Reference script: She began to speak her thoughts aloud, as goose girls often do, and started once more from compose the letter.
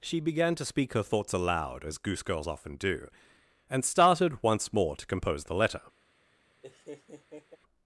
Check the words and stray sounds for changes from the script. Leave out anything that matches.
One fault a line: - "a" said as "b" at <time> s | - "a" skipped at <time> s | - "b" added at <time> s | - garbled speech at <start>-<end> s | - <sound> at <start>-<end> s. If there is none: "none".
- "from" said as "to" at 4.9 s
- laugh at 6.6-7.6 s